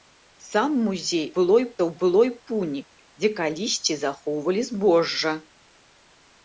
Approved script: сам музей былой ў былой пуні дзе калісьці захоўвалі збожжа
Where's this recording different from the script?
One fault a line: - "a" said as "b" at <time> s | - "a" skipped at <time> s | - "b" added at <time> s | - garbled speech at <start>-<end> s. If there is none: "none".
none